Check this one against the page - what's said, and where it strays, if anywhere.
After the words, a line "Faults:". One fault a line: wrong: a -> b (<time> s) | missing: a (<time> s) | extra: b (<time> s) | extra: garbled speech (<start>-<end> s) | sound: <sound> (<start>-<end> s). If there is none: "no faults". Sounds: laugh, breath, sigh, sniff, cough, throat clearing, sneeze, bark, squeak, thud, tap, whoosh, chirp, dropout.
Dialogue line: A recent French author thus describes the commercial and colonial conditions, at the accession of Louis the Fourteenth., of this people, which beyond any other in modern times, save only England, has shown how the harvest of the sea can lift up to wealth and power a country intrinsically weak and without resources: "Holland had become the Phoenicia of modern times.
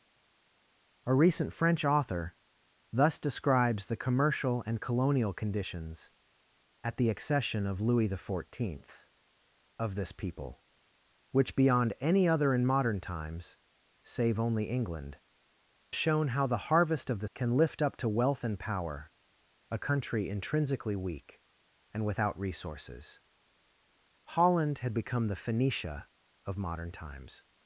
A recent French author thus describes the commercial and colonial conditions, at the accession of Louis the Fourteenth., of this people, which beyond any other in modern times, save only England, shown how the harvest of the can lift up to wealth and power a country intrinsically weak and without resources: "Holland had become the Phoenicia of modern times.
Faults:
missing: has (15.2 s)
missing: sea (17.3 s)